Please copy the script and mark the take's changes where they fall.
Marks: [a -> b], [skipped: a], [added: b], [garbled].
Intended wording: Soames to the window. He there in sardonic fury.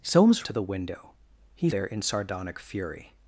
Soames to the window. He there in sardonic fury.